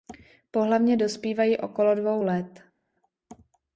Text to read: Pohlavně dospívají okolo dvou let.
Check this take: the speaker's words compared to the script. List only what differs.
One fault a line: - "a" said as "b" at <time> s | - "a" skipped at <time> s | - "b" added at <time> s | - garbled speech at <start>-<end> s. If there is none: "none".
none